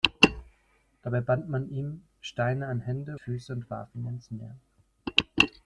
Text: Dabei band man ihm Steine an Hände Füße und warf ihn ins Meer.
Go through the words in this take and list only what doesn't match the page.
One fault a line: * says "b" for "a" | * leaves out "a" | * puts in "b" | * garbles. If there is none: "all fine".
all fine